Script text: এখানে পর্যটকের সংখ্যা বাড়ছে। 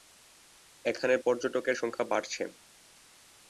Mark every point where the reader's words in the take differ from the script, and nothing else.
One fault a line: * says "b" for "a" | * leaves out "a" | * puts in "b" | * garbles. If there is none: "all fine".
all fine